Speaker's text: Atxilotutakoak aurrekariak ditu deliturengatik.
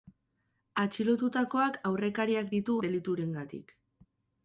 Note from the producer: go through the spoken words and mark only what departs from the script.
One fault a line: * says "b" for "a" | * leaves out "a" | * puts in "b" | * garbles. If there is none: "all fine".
all fine